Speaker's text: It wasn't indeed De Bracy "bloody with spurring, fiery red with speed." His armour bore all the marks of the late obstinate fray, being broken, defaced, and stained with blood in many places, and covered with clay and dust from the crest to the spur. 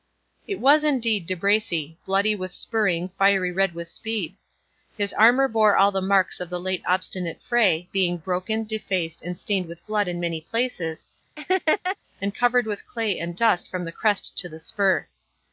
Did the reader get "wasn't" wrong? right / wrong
wrong